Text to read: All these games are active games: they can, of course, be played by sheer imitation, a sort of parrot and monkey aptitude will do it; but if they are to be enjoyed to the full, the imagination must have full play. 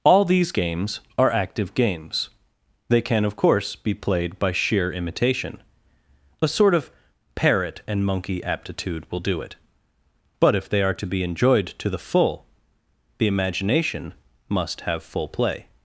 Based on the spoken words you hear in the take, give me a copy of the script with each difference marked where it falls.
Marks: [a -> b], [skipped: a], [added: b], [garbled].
All these games are active games: they can, of course, be played by sheer imitation, a sort of parrot and monkey aptitude will do it; but if they are to be enjoyed to the full, the imagination must have full play.